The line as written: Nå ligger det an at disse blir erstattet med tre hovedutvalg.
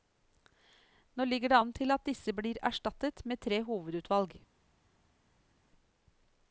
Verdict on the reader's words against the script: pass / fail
fail